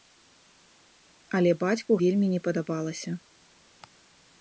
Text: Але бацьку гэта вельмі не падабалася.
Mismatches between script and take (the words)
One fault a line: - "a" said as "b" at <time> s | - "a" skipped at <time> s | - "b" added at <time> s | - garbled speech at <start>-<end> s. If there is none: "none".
- "гэта" skipped at 1.9 s